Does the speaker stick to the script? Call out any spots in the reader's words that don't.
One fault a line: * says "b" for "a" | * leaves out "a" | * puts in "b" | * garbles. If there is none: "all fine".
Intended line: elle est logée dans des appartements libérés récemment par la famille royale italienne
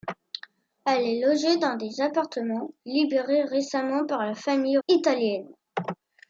* leaves out "royale"